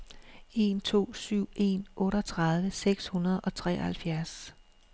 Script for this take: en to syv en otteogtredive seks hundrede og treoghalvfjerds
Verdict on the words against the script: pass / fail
pass